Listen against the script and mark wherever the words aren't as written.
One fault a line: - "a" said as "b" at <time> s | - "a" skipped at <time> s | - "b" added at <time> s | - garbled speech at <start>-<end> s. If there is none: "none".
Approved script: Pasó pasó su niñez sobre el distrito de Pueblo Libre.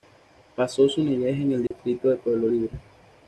- "pasó" skipped at 0.9 s
- "sobre" said as "en" at 1.4 s